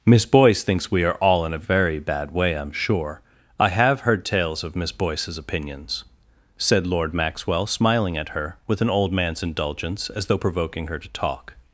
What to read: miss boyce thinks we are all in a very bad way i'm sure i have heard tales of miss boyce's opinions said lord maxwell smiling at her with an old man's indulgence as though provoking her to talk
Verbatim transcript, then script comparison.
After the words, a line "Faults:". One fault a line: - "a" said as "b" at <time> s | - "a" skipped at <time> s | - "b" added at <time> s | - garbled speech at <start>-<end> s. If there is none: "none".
miss boyce thinks we are all in a very bad way i'm sure i have heard tales of miss boyce's opinions said lord maxwell smiling at her with an old man's indulgence as though provoking her to talk
Faults:
none